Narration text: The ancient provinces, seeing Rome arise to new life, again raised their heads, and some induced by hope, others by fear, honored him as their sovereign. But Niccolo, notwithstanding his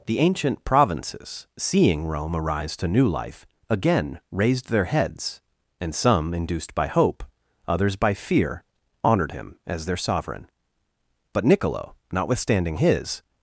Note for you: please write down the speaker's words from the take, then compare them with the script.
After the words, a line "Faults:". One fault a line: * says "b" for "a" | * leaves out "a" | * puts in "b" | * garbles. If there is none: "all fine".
The ancient provinces, seeing Rome arise to new life, again raised their heads, and some induced by hope, others by fear, honored him as their sovereign. But Niccolo, notwithstanding his
Faults:
all fine